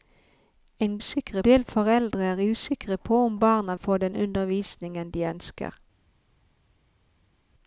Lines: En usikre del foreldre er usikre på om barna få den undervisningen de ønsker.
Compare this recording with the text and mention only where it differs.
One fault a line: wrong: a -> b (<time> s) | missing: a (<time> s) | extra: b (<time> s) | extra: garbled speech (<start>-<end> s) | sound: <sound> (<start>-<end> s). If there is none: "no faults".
no faults